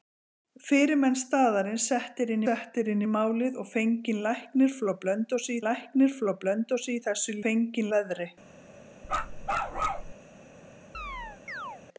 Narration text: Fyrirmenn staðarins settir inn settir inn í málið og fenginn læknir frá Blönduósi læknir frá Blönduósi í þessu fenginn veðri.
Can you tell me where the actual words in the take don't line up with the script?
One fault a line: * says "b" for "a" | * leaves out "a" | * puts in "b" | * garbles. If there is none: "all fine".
all fine